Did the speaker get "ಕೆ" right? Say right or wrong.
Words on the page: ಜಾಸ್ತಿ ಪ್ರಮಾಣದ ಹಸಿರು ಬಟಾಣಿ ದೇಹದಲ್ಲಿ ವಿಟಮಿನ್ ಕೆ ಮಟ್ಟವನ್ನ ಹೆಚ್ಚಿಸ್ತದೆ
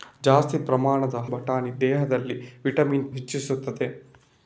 wrong